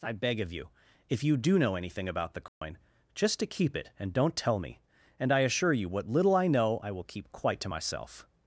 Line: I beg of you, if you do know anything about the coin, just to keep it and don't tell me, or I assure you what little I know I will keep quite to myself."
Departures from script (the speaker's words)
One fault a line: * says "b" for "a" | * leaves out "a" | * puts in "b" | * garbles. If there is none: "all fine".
* says "and" for "or"